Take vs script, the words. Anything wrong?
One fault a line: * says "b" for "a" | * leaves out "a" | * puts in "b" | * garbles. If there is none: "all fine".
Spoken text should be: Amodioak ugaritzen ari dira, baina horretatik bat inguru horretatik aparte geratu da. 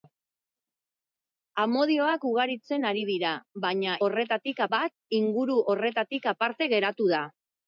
all fine